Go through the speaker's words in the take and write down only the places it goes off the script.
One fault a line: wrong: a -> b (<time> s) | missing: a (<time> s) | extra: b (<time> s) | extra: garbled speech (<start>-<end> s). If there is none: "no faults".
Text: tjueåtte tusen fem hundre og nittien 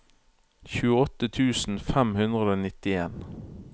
no faults